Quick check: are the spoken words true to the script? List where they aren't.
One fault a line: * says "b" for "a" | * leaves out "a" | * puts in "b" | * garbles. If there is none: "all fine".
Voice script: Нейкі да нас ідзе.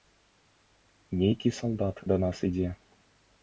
* puts in "салдат"